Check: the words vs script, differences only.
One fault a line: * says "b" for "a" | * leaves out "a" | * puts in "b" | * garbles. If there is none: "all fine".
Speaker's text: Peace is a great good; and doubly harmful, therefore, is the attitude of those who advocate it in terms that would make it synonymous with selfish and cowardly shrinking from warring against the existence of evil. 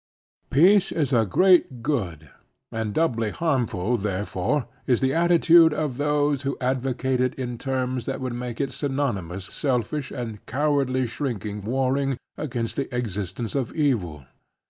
* leaves out "with"
* leaves out "from"